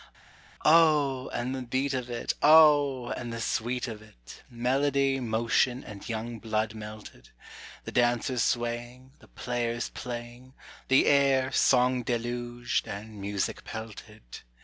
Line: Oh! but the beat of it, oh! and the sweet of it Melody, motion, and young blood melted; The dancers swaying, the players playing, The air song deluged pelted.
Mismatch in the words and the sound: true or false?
true